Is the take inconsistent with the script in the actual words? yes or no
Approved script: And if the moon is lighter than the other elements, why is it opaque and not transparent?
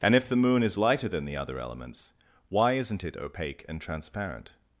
yes